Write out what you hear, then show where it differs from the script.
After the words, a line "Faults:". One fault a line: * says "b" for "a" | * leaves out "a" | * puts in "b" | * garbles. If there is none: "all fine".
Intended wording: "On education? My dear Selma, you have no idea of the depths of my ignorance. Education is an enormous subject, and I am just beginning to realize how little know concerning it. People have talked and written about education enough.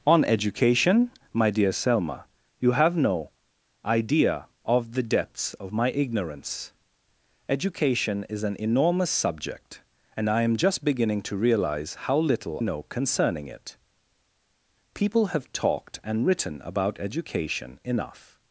"On education? My dear Selma, you have no idea of the depths of my ignorance. Education is an enormous subject, and I am just beginning to realize how little know concerning it. People have talked and written about education enough.
Faults:
all fine